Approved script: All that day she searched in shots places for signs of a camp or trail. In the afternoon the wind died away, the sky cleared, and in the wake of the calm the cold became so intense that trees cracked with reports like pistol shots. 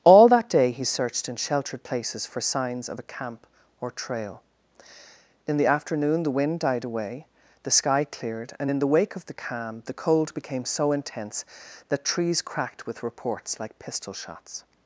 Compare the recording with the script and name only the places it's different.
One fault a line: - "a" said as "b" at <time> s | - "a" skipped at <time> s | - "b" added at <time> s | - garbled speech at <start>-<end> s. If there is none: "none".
- "she" said as "he" at 0.7 s
- "shots" said as "sheltered" at 1.4 s